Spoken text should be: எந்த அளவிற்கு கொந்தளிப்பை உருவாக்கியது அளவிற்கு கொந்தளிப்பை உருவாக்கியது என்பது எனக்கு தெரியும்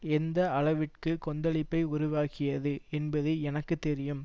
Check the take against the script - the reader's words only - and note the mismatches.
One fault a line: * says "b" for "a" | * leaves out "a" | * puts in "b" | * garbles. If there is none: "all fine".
* leaves out "அளவிற்கு கொந்தளிப்பை உருவாக்கியது"